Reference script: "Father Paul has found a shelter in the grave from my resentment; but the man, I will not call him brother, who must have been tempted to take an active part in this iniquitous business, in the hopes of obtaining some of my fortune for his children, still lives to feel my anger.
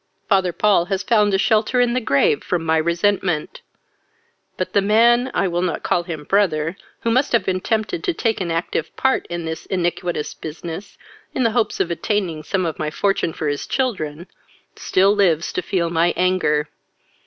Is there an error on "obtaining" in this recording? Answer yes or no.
no